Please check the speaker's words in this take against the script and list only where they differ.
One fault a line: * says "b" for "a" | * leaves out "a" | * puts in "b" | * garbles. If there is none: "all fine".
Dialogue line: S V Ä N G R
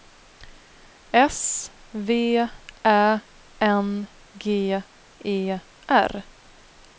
* puts in "E"